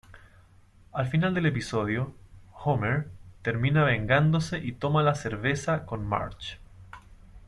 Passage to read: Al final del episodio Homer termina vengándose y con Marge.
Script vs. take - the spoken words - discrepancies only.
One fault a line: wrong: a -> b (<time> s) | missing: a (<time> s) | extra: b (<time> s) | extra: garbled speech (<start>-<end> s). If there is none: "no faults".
extra: toma la cerveza (4.7 s)